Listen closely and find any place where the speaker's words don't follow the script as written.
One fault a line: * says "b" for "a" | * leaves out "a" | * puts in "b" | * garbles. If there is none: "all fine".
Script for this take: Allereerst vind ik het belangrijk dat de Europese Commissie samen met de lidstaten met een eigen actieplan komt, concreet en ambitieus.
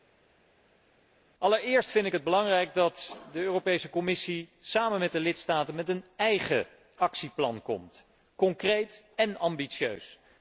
all fine